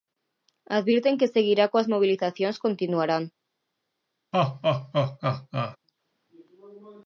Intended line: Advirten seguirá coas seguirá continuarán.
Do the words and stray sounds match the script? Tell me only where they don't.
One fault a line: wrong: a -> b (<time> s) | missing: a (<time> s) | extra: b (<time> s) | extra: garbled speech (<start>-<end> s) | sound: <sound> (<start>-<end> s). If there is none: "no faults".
extra: que (1.2 s)
wrong: seguirá -> mobilizacións (1.9 s)
sound: laugh (4.3-5.8 s)